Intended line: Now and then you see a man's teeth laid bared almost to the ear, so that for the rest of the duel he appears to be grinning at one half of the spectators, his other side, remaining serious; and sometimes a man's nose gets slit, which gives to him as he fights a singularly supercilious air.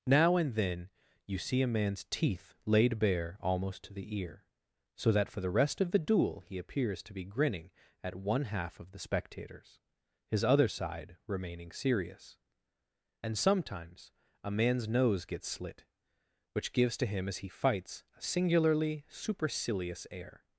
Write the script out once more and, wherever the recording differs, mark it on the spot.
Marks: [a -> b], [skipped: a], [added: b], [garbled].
Now and then you see a man's teeth laid [bared -> bare] almost to the ear, so that for the rest of the duel he appears to be grinning at one half of the spectators, his other side, remaining serious; and sometimes a man's nose gets slit, which gives to him as he fights a singularly supercilious air.